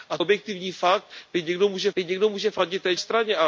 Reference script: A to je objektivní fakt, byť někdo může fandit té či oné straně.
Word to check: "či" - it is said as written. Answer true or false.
false